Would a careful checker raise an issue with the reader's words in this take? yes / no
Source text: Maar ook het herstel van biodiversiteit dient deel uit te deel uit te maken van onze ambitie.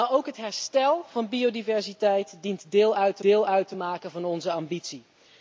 no